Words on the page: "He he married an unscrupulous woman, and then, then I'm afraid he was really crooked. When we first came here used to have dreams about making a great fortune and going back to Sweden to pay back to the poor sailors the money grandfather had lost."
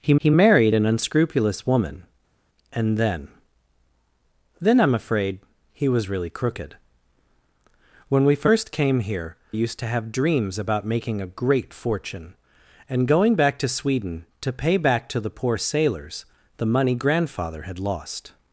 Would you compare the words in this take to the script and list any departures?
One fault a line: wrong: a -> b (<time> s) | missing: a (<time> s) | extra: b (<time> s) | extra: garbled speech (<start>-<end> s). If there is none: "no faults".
no faults